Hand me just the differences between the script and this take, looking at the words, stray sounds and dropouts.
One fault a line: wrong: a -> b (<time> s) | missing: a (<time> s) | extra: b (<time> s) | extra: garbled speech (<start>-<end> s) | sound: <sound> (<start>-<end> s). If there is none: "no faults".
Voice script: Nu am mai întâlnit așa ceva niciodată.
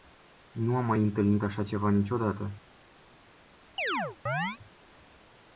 sound: chirp (3.8-4.6 s)